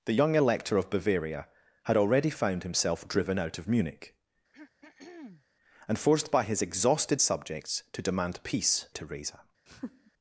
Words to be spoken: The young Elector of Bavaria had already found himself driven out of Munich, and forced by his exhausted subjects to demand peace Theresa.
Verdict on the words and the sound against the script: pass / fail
fail